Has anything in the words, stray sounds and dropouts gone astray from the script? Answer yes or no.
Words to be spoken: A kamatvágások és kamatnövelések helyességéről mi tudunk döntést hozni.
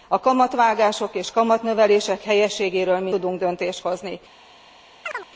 yes